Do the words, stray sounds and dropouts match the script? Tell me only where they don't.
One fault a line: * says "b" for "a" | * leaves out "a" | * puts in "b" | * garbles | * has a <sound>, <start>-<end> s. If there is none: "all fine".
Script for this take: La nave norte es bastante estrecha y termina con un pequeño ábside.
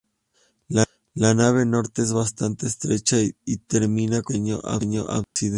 * has a dropout, 5.2-5.4 s